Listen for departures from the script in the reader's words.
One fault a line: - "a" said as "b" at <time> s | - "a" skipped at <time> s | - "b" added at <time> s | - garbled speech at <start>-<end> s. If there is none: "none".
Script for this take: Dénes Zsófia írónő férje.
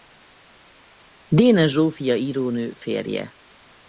none